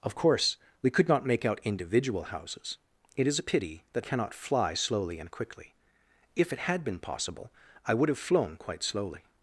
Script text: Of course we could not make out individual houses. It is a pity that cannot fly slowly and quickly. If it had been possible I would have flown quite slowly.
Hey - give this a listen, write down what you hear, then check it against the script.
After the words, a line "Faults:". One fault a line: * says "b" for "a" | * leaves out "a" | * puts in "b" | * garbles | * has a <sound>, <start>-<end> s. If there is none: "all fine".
Of course we could not make out individual houses. It is a pity that cannot fly slowly and quickly. If it had been possible I would have flown quite slowly.
Faults:
all fine